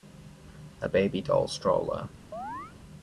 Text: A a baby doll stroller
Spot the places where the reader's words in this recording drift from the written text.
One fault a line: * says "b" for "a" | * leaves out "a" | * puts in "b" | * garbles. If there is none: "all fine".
all fine